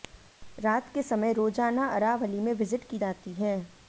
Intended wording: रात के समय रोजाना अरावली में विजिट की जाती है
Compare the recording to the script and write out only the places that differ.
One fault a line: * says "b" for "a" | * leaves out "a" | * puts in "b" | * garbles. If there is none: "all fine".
all fine